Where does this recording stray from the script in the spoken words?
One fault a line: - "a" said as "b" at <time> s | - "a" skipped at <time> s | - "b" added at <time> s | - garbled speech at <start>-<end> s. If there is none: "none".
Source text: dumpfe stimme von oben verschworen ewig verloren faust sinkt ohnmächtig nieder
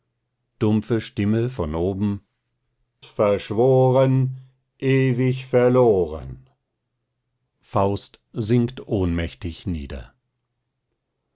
none